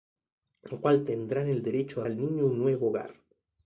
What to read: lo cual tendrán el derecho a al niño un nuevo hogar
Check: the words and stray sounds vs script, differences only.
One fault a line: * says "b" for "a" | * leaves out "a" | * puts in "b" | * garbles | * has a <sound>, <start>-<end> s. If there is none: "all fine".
all fine